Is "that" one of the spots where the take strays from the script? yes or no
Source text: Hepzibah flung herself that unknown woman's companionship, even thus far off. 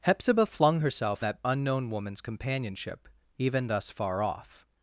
no